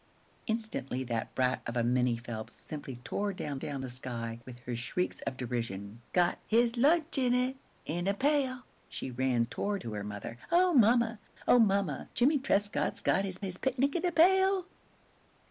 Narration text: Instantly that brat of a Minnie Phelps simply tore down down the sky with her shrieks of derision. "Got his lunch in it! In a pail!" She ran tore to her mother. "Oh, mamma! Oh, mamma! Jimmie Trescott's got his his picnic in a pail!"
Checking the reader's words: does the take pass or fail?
pass